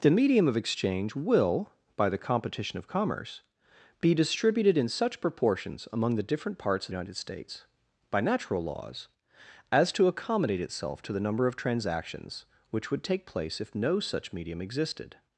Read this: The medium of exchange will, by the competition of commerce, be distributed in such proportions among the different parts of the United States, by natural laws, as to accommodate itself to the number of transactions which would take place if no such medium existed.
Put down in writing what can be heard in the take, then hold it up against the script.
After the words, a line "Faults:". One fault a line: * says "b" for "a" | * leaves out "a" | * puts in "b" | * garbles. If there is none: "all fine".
The medium of exchange will, by the competition of commerce, be distributed in such proportions among the different parts of United States, by natural laws, as to accommodate itself to the number of transactions which would take place if no such medium existed.
Faults:
* leaves out "the"